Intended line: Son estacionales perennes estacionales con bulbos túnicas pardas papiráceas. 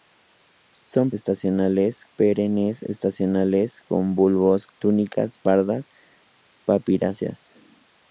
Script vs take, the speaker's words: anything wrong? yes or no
no